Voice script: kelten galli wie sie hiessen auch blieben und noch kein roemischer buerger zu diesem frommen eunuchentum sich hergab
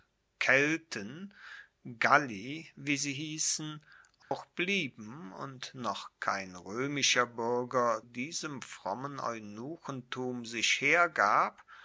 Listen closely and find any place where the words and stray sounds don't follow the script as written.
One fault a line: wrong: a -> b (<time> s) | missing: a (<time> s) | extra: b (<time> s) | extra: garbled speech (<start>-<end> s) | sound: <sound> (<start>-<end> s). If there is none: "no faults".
sound: dropout (4.2-4.3 s)
missing: zu (8.0 s)